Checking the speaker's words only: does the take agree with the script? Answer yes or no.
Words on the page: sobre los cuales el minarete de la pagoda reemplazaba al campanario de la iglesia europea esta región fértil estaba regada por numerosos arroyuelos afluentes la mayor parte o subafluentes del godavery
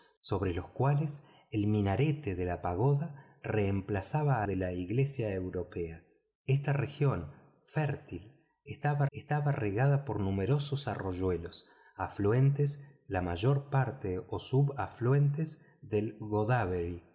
no